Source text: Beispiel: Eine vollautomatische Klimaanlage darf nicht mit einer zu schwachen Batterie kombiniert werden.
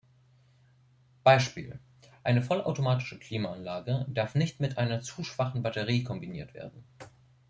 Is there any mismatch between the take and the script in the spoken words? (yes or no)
no